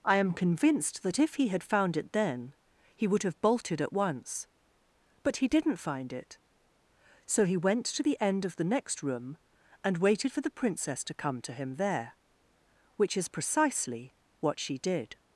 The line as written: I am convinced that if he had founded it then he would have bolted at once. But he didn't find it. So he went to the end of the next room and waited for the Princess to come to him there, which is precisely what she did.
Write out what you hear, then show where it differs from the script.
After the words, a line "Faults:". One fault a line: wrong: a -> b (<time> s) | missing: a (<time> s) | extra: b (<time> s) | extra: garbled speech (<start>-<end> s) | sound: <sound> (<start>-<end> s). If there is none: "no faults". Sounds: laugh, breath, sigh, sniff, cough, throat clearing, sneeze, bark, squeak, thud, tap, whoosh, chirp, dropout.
I am convinced that if he had found it then he would have bolted at once. But he didn't find it. So he went to the end of the next room and waited for the Princess to come to him there, which is precisely what she did.
Faults:
wrong: founded -> found (1.6 s)